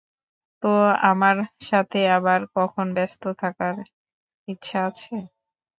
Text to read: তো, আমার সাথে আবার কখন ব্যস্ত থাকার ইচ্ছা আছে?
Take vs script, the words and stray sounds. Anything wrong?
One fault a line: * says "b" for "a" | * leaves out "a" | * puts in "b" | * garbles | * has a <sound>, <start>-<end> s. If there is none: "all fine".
all fine